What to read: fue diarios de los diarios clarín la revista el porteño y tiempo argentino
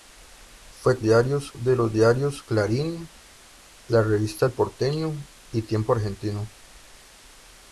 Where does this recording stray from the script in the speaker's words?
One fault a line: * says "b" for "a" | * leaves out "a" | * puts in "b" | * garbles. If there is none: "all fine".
all fine